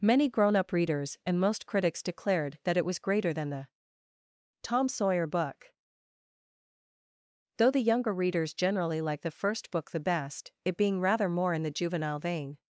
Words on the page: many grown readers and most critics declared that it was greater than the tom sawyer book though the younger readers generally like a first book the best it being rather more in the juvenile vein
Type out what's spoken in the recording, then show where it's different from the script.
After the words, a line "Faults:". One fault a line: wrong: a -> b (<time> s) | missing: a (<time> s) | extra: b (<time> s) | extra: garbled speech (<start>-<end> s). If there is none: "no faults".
many grown up readers and most critics declared that it was greater than the tom sawyer book though the younger readers generally like the first book the best it being rather more in the juvenile vein
Faults:
extra: up (0.6 s)
wrong: a -> the (9.2 s)